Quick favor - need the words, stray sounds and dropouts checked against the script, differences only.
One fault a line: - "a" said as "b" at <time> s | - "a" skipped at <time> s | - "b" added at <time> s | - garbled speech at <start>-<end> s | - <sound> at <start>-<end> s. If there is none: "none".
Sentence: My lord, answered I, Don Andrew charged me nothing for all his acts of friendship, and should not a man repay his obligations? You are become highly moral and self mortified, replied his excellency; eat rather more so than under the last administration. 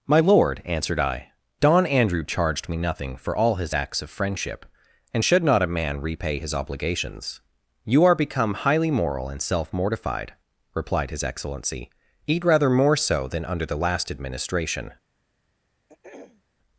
- throat clearing at 15.9-16.4 s